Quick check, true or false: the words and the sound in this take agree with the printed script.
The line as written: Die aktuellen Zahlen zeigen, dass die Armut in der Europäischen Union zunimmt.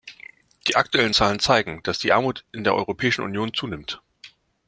true